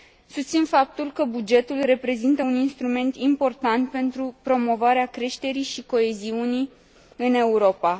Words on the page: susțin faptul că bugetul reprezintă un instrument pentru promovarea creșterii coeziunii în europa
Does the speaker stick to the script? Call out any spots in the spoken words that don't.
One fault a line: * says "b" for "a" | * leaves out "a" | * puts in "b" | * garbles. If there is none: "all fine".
* puts in "important"
* puts in "și"